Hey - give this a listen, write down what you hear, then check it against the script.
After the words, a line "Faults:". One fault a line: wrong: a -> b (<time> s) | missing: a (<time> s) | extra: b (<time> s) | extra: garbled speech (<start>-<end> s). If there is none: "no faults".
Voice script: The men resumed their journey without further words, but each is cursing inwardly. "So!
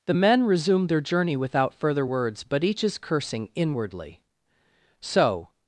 The men resumed their journey without further words, but each is cursing inwardly. "So!
Faults:
no faults